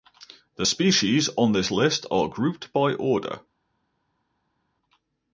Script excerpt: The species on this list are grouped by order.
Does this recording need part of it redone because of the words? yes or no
no